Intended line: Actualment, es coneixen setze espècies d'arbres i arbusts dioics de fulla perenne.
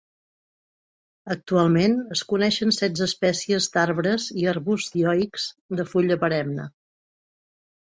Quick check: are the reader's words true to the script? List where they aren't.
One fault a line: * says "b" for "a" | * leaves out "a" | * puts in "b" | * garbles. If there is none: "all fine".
all fine